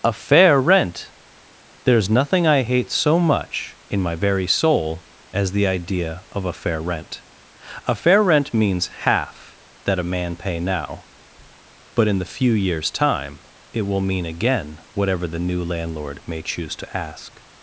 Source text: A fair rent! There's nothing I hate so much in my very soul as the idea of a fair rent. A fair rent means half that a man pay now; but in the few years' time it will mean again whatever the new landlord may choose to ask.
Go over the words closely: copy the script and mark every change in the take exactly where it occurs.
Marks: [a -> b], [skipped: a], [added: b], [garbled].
A fair rent! There's nothing I hate so much in my very soul as the idea of a fair rent. A fair rent means half that a man pay now; but in the few years' time it will mean again whatever the new landlord may choose to ask.